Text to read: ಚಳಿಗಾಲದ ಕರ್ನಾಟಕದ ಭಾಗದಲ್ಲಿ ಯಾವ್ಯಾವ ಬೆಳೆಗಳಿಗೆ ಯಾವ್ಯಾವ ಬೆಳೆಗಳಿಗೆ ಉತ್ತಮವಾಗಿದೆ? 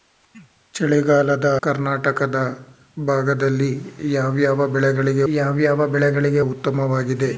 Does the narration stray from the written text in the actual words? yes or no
no